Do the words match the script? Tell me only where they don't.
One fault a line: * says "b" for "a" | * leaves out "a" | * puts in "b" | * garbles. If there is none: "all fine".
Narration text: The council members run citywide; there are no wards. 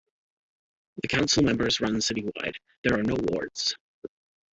all fine